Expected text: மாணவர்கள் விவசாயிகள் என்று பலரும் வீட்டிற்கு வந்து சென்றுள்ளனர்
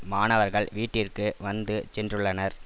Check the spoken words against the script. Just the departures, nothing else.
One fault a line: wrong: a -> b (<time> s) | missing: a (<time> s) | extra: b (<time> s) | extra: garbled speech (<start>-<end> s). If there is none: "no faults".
missing: விவசாயிகள் என்று பலரும் (0.7 s)